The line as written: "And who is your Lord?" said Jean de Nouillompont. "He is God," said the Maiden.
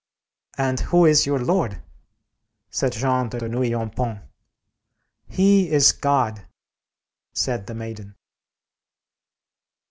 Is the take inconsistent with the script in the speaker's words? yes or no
yes